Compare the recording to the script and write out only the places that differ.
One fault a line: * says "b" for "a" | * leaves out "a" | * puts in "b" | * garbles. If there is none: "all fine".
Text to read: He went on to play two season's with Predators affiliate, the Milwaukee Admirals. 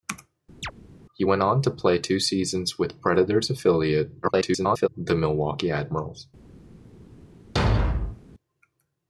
* garbles